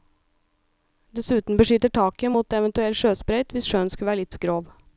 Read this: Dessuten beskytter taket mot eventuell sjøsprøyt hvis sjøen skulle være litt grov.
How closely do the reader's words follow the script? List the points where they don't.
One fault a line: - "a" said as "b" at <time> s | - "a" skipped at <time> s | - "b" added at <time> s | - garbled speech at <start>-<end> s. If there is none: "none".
none